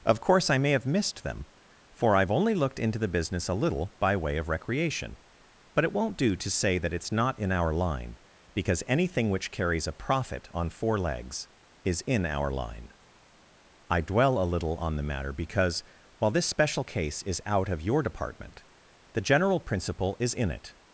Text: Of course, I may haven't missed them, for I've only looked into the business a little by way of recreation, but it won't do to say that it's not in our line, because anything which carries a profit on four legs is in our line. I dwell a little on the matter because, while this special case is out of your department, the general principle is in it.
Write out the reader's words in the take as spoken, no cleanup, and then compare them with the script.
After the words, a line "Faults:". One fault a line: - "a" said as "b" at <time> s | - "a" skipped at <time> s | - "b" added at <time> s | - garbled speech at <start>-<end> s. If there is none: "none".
Of course, I may have missed them, for I've only looked into the business a little by way of recreation, but it won't do to say that it's not in our line, because anything which carries a profit on four legs is in our line. I dwell a little on the matter because, while this special case is out of your department, the general principle is in it.
Faults:
- "haven't" said as "have" at 0.7 s